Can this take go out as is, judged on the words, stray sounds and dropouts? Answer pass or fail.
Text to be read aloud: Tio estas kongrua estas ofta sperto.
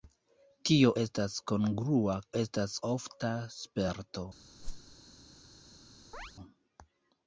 fail